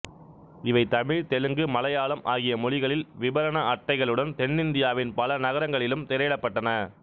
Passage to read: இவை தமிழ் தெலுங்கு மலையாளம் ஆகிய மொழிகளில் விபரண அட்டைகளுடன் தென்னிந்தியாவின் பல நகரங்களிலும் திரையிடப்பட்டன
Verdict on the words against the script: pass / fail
pass